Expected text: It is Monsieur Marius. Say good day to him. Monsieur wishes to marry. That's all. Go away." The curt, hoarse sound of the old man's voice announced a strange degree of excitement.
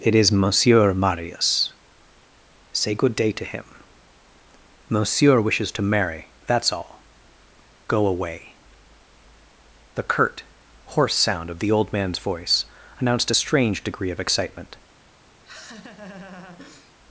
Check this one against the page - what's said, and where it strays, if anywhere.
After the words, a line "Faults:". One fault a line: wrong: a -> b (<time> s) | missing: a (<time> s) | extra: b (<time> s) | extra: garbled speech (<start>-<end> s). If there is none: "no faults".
It is Monsieur Marius. Say good day to him. Monsieur wishes to marry. That's all. Go away." The curt, hoarse sound of the old man's voice announced a strange degree of excitement.
Faults:
no faults